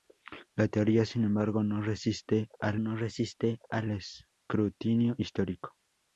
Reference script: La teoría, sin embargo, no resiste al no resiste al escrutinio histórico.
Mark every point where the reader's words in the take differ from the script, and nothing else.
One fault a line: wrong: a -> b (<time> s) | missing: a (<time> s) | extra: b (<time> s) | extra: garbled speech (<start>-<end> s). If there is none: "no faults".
no faults